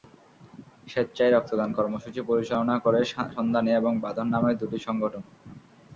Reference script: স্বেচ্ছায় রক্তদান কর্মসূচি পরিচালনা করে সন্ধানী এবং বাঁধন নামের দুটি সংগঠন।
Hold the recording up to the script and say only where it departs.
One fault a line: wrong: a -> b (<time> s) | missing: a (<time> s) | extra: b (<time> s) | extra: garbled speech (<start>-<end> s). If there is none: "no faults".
no faults